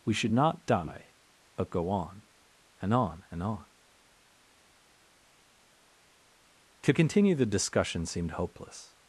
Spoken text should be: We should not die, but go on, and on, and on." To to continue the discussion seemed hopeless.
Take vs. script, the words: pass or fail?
fail